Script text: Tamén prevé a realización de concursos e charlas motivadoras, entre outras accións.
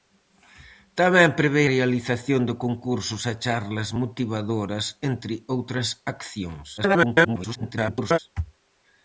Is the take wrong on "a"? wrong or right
wrong